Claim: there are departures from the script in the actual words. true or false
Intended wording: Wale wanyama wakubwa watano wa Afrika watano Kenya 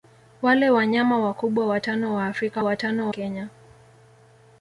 false